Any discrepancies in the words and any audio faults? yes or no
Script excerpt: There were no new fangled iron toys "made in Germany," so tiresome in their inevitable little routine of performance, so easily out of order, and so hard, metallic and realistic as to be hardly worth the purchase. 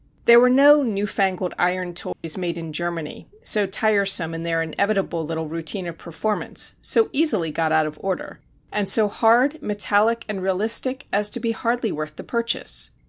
yes